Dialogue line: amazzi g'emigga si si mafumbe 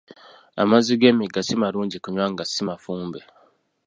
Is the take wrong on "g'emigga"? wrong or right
right